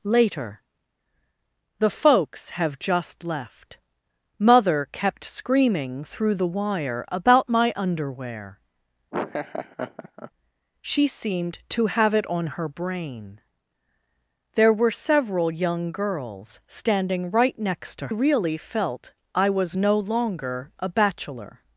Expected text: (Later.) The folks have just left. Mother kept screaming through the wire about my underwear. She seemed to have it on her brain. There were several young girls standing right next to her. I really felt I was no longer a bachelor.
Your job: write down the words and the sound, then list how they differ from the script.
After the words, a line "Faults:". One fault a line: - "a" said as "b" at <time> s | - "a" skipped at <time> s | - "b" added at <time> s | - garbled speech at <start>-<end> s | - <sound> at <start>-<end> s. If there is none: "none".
(Later.) The folks have just left. Mother kept screaming through the wire about my underwear. She seemed to have it on her brain. There were several young girls standing right next to really felt I was no longer a bachelor.
Faults:
- laugh at 9.1-10.3 s
- "her I" skipped at 18.1 s